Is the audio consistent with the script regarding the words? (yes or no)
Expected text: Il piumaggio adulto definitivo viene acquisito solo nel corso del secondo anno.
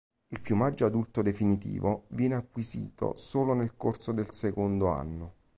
yes